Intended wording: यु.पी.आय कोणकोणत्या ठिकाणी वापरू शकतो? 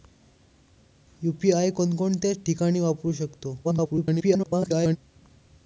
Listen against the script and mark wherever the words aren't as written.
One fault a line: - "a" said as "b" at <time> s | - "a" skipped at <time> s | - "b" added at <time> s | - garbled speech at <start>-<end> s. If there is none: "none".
- garbled speech at 3.6-5.0 s